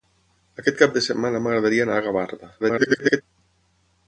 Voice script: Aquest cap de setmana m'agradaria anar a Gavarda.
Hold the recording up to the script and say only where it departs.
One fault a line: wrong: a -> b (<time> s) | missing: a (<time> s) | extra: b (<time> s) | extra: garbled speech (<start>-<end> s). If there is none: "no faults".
extra: garbled speech (2.6-3.2 s)